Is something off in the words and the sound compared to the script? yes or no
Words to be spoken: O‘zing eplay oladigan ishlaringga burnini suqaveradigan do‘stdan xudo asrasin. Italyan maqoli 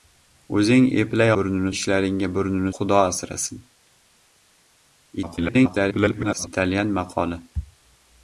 yes